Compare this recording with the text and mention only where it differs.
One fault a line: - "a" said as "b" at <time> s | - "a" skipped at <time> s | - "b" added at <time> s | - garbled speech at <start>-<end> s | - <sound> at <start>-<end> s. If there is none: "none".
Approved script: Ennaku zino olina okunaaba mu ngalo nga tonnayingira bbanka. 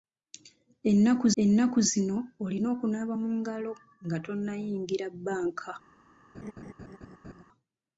- "ennaku" added at 1.4 s
- laugh at 6.3-7.4 s